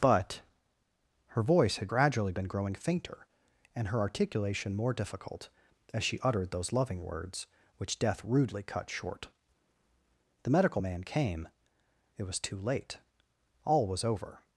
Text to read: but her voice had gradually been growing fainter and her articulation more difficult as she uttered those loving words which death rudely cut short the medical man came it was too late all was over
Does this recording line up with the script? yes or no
yes